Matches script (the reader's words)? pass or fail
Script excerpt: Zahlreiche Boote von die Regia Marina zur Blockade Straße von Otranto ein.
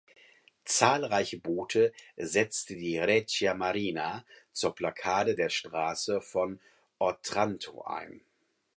fail